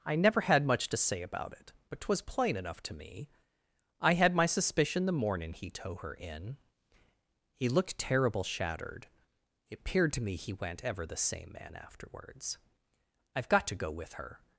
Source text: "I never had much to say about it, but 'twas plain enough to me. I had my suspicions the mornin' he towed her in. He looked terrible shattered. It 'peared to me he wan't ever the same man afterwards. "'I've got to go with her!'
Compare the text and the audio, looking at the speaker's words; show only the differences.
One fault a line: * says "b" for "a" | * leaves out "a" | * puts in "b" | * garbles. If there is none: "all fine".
* says "suspicion" for "suspicions"
* says "tow" for "towed"